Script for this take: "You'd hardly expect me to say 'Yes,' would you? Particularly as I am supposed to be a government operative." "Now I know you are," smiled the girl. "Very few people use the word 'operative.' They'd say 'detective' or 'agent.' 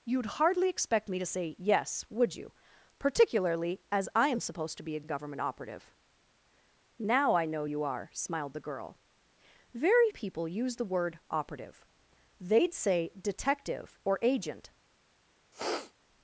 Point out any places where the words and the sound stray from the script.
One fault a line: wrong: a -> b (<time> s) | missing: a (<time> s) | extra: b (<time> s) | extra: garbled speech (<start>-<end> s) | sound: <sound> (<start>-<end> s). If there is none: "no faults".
extra: a (5.0 s)
missing: few (10.1 s)
sound: sniff (15.5-15.9 s)